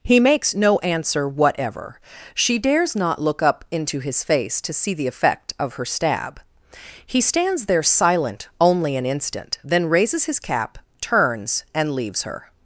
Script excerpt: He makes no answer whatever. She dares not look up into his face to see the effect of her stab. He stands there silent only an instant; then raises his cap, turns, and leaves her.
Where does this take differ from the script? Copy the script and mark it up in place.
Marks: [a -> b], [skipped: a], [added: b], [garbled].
He makes no answer whatever. She dares not look up into his face to see the effect of her stab. He stands there silent only an instant; then raises his cap, turns, and leaves her.